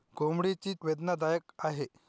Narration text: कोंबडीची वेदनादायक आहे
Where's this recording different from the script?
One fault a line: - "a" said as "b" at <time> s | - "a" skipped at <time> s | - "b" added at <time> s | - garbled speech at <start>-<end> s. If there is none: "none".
none